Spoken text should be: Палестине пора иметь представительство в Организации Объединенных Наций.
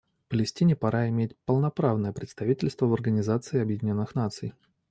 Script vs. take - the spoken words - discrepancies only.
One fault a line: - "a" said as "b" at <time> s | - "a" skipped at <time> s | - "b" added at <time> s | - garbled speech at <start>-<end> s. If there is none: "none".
- "полноправное" added at 1.4 s